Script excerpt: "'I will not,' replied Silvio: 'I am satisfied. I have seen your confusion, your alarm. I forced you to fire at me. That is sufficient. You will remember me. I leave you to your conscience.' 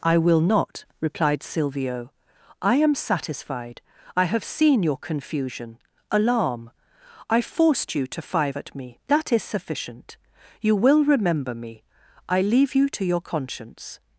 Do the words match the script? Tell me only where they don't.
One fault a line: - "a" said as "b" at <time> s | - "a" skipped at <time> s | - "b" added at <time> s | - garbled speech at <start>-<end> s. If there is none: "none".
- "your" skipped at 5.8 s
- "fire" said as "five" at 8.2 s